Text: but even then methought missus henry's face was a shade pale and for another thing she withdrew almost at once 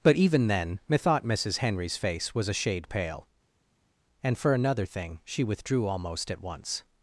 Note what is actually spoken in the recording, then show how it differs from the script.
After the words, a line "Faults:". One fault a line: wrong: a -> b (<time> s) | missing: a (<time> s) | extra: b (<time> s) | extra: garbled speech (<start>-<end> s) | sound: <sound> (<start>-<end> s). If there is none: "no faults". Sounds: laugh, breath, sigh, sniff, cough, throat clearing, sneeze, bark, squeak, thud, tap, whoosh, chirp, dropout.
but even then methought missus henry's face was a shade pale and for another thing she withdrew almost at once
Faults:
no faults